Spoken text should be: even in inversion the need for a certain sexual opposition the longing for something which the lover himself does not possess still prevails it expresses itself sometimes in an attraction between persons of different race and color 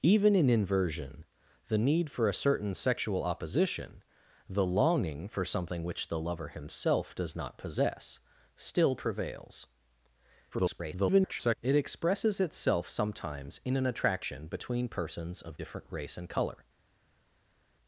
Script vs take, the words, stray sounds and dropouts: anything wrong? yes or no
yes